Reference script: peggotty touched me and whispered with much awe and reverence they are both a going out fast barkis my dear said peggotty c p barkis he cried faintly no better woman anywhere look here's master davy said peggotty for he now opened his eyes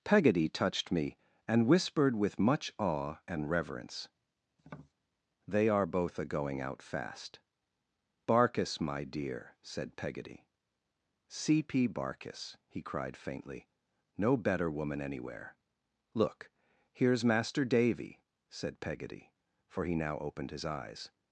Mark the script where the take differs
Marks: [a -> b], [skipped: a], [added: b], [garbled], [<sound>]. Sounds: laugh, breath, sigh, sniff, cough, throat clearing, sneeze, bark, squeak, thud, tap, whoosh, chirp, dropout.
peggotty touched me and whispered with much awe and reverence [tap] they are both a going out fast barkis my dear said peggotty c p barkis he cried faintly no better woman anywhere look here's master davy said peggotty for he now opened his eyes